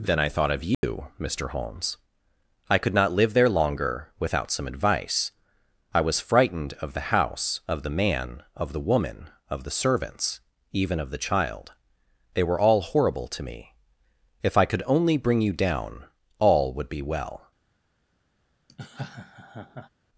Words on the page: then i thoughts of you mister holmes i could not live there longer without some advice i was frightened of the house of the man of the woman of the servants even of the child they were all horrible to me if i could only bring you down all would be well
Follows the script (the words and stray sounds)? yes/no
no